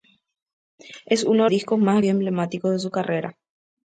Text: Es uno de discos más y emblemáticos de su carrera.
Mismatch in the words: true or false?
false